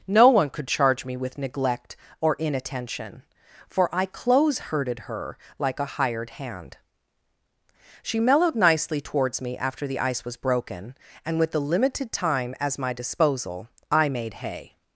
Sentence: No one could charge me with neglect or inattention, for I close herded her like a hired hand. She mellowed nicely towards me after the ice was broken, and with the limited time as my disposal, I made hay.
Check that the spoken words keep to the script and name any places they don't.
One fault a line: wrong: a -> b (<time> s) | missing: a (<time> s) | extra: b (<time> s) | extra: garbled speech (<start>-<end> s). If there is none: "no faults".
no faults